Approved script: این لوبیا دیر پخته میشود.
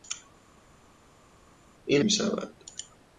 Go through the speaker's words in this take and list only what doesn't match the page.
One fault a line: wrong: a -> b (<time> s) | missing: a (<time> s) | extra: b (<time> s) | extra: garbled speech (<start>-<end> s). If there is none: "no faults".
missing: لوبیا دیر پخته (2.0 s)